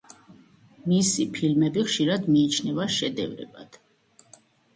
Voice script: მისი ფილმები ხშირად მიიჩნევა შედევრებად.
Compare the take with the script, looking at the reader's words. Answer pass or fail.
pass